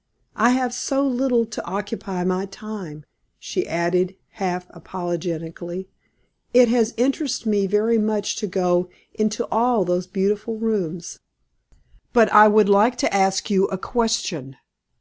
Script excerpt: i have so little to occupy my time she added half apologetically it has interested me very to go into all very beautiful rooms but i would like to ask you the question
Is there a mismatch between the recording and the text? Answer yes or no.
yes